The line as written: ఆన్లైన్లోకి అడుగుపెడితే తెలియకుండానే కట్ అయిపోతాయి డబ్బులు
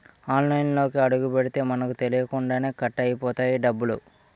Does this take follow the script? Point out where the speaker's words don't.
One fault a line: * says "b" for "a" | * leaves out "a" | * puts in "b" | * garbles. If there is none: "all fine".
* puts in "మనకు"